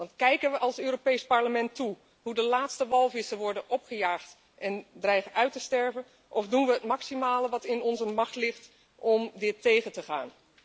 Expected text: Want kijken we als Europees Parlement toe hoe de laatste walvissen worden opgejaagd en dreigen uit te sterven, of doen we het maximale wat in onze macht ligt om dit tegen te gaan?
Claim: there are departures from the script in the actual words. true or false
false